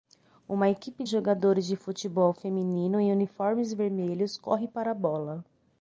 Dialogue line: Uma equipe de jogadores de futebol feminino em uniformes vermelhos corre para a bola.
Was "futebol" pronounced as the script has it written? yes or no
yes